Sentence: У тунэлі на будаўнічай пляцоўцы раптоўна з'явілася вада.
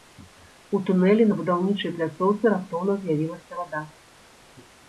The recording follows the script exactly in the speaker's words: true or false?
true